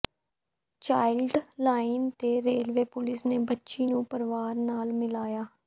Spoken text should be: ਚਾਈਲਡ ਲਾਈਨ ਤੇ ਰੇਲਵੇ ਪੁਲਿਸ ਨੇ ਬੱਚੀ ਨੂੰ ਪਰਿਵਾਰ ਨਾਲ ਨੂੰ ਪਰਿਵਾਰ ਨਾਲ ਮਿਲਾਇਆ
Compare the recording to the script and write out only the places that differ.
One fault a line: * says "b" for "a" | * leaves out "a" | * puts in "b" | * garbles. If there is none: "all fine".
* leaves out "ਨੂੰ ਪਰਿਵਾਰ ਨਾਲ"